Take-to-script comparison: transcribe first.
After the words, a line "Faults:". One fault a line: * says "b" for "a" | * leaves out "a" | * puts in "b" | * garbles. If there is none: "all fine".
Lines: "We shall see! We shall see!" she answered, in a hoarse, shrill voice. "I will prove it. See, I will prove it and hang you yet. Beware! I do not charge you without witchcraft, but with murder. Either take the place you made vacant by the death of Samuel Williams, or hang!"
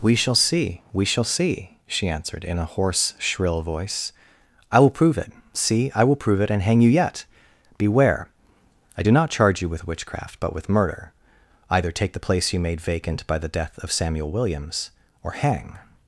"We shall see! We shall see!" she answered, in a hoarse, shrill voice. "I will prove it. See, I will prove it and hang you yet. Beware! I do not charge you with witchcraft, but with murder. Either take the place you made vacant by the death of Samuel Williams, or hang!"
Faults:
* says "with" for "without"